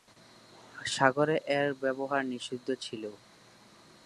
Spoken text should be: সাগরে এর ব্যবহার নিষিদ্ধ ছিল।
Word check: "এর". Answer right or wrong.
right